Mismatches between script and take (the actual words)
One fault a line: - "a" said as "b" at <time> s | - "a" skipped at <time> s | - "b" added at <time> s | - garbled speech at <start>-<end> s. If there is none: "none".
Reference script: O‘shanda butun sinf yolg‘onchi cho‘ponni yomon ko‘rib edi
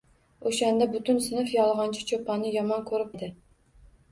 none